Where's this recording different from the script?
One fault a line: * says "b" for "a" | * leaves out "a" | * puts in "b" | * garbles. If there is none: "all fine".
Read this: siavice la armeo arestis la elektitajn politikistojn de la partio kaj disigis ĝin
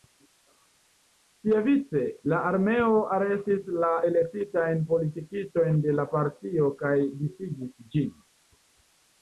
all fine